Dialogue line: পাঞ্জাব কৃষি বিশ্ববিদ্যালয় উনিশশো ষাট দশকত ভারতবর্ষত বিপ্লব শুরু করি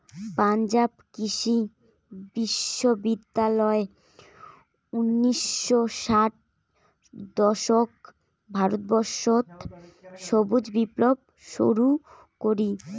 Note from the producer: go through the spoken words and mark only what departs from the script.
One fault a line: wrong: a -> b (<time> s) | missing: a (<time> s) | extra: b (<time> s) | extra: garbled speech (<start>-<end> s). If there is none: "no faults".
extra: সবুজ (10.2 s)